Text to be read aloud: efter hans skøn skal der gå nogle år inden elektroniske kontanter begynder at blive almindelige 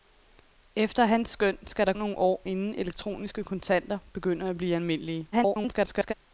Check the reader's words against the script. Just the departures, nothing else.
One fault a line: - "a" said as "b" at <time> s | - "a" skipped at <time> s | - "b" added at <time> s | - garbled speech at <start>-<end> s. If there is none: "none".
- "gå" skipped at 1.9 s
- garbled speech at 5.3-6.1 s